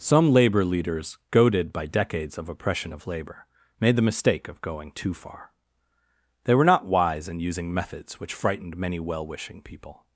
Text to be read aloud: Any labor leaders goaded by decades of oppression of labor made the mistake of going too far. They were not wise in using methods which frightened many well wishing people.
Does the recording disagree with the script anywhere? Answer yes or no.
yes